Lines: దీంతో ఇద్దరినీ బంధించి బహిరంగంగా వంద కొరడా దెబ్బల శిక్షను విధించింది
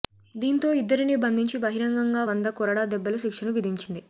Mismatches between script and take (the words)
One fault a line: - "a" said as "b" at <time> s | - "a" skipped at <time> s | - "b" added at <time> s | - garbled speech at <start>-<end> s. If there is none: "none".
none